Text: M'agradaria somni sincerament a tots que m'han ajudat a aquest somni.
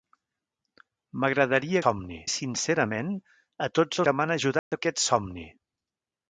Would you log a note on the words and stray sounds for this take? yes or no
yes